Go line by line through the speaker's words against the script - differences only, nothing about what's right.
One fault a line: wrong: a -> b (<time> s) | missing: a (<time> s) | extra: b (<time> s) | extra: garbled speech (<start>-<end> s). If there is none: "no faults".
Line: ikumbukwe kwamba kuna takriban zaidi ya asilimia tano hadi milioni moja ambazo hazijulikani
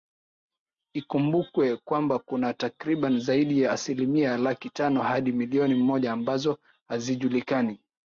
extra: laki (4.4 s)